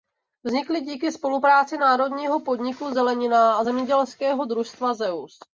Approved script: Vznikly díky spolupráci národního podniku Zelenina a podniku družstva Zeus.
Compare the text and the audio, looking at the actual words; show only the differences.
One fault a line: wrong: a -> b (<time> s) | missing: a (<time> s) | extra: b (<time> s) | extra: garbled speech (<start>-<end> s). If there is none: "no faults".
wrong: podniku -> zemědělského (3.6 s)